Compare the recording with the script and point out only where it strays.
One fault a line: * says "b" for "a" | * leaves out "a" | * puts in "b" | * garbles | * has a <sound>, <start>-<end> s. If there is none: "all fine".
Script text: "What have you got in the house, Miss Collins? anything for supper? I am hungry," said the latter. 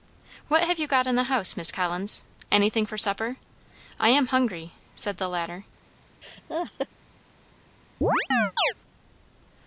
* has a laugh, 6.2-6.9 s
* has a chirp, 8.0-8.7 s